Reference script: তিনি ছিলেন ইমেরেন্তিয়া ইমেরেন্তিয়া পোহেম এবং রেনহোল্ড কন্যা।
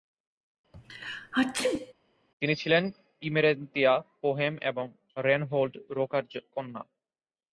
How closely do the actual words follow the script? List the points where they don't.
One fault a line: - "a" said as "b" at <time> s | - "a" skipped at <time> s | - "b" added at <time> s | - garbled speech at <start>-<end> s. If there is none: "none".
- "ইমেরেন্তিয়া" skipped at 3.9 s
- "রোকার" added at 5.9 s